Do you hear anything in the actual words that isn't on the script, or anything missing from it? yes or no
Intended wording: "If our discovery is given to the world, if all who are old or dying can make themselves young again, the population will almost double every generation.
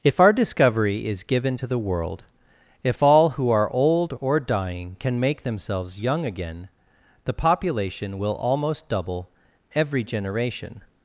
no